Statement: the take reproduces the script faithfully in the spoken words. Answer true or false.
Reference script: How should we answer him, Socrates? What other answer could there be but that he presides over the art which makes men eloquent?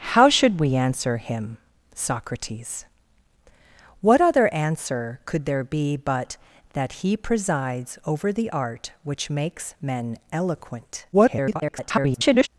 false